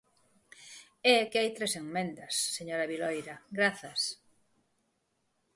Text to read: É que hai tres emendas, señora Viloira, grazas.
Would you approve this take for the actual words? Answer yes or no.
yes